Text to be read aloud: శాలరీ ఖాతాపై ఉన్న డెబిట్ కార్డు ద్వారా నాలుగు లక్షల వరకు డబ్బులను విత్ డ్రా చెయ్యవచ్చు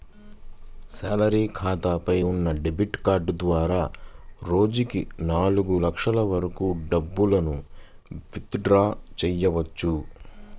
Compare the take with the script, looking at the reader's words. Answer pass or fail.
fail